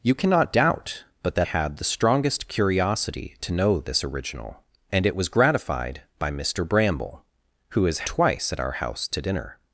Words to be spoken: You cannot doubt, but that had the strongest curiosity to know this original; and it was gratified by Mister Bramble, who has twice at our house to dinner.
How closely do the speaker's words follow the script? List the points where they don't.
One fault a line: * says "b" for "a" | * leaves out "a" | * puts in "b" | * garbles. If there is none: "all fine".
all fine